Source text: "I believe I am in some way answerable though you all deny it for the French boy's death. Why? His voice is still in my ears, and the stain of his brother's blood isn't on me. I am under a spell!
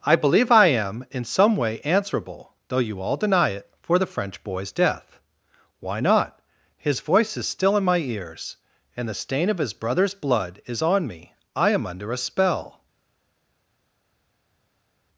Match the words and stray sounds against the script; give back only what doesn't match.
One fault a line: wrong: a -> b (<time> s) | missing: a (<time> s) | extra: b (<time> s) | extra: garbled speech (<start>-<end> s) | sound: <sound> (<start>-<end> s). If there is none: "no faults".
extra: not (6.0 s)
wrong: isn't -> is (10.7 s)